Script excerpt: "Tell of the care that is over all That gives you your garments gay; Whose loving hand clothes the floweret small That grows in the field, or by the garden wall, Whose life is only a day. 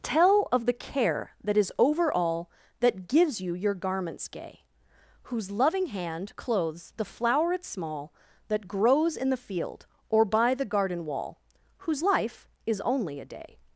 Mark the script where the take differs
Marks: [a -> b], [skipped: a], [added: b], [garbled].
"Tell of the care that is over all That gives you your garments gay; Whose loving hand clothes the floweret small That grows in the field, or by the garden wall, Whose life is only a day.